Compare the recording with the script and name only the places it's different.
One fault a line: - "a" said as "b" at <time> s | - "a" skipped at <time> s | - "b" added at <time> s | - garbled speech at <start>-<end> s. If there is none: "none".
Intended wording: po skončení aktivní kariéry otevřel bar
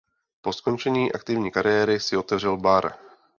- "si" added at 2.0 s